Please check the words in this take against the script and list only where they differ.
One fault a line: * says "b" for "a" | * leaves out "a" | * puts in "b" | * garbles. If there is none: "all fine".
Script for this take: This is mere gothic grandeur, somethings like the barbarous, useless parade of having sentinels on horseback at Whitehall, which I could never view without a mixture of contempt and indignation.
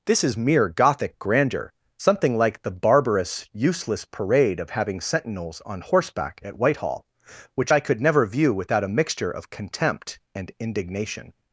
* says "something" for "somethings"